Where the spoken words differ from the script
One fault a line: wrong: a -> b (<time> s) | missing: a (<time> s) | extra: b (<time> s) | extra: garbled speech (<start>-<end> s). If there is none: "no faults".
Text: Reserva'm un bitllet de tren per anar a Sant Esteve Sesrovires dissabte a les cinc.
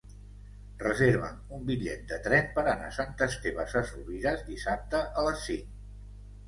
no faults